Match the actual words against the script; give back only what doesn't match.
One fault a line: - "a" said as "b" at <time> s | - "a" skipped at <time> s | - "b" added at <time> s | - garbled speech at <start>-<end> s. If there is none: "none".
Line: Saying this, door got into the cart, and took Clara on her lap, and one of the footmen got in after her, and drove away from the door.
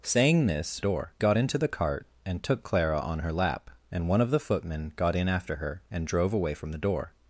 none